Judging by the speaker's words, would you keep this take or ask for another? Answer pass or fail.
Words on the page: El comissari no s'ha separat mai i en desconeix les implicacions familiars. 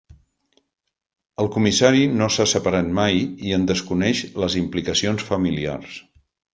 pass